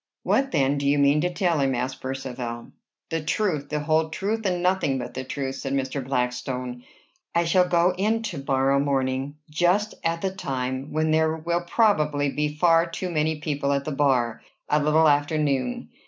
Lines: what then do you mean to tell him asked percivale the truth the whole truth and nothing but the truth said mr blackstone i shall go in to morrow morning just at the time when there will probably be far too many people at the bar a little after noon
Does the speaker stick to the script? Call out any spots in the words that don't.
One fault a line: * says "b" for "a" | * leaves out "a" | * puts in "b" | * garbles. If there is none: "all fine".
all fine